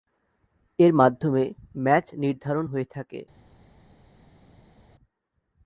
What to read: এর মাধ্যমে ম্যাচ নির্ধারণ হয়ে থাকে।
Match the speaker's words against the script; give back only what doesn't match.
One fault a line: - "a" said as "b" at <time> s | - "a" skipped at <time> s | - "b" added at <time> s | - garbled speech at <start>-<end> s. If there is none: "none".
none